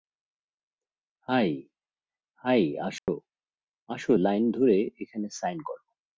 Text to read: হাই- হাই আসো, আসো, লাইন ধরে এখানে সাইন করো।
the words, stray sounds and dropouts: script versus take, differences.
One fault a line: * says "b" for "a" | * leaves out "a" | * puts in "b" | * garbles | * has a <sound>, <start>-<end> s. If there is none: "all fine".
* has a dropout, 3.0-3.1 s